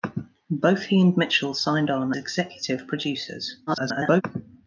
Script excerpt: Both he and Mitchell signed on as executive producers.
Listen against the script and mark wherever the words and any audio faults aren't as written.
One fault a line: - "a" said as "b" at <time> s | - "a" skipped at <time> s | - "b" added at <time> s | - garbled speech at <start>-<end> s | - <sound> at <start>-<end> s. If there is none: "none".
- "as" skipped at 2.1 s
- garbled speech at 3.7-4.2 s